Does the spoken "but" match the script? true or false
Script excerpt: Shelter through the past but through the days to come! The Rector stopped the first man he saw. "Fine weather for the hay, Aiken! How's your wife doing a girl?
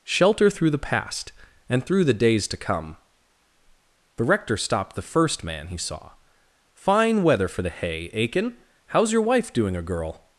false